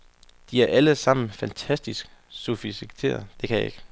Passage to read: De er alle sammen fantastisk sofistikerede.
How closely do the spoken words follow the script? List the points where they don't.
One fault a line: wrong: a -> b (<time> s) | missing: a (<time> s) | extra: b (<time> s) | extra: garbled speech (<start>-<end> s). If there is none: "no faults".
no faults